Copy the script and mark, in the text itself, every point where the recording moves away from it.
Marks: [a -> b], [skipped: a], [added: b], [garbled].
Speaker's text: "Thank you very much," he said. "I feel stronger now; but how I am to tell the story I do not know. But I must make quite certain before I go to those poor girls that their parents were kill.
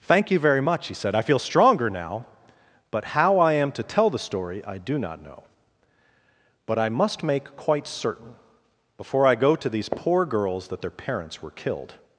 "Thank you very much," he said. "I feel stronger now; but how I am to tell the story I do not know. But I must make quite certain before I go to [those -> these] poor girls that their parents were [kill. -> killed]